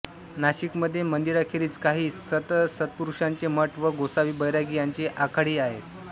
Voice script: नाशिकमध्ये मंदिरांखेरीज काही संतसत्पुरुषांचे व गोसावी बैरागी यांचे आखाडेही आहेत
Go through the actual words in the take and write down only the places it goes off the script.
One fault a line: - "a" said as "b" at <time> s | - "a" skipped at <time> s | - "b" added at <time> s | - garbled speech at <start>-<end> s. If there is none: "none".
- "मठ" added at 3.5 s